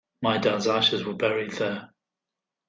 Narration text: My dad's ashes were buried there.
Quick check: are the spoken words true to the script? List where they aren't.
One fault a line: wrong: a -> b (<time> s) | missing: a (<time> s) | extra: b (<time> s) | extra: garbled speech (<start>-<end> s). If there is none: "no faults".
no faults